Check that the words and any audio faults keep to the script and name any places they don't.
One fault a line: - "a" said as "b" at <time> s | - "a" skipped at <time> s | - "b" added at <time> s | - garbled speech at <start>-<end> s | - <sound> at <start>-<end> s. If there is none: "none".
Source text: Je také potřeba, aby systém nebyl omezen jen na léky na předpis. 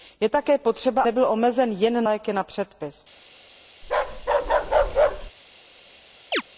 - "aby systém" skipped at 1.0 s
- "na" skipped at 2.0 s
- bark at 3.8-5.3 s
- chirp at 6.3-6.4 s